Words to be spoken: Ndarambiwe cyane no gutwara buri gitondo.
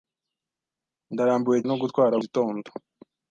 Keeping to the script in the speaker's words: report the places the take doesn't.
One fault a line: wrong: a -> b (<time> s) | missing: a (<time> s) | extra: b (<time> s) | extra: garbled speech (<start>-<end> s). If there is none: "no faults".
missing: cyane (1.6 s)
missing: buri (2.1 s)